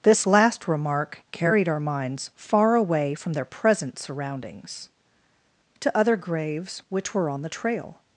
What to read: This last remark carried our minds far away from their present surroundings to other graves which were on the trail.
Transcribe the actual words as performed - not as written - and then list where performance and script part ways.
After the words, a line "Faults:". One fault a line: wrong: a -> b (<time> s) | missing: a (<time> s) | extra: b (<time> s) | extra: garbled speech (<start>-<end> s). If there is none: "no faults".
This last remark carried our minds far away from their present surroundings to other graves which were on the trail.
Faults:
no faults